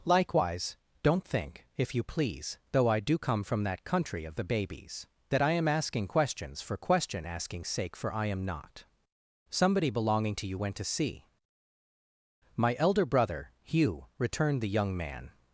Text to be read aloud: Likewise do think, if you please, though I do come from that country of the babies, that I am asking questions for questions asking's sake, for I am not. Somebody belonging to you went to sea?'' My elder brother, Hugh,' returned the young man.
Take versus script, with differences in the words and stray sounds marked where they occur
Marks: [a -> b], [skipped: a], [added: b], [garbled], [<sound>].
Likewise [do -> don't] think, if you please, though I do come from that country of the babies, that I am asking questions for [questions -> question] asking's sake, for I am not. Somebody belonging to you went to sea?'' My elder brother, Hugh,' returned the young man.